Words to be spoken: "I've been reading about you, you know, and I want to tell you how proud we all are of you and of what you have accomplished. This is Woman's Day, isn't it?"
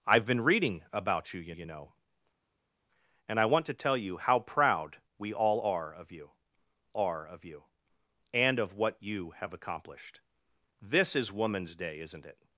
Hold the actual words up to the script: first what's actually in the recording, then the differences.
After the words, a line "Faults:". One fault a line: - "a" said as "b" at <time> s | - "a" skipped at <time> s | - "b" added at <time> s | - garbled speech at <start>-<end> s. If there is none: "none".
"I've been reading about you, you you know, and I want to tell you how proud we all are of you are of you and of what you have accomplished. This is Woman's Day, isn't it?"
Faults:
- "you" added at 1.5 s
- "are of you" added at 6.9 s